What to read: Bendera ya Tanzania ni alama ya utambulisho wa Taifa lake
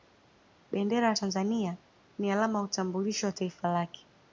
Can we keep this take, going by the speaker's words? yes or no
yes